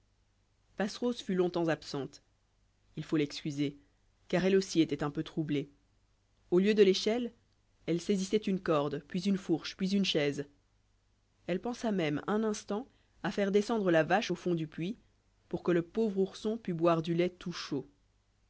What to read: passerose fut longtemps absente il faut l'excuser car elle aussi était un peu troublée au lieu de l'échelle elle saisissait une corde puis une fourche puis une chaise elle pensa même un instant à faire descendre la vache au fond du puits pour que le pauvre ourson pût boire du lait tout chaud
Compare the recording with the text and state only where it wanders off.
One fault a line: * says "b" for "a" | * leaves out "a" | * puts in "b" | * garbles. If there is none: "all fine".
all fine